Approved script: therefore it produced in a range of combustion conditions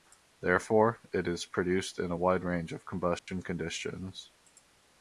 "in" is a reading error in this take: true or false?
false